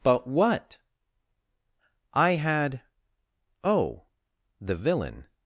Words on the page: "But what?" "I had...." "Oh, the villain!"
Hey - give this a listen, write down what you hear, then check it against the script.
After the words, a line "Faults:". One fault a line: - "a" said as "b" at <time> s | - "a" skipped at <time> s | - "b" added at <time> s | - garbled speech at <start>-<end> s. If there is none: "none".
"But what?" "I had...." "Oh, the villain!"
Faults:
none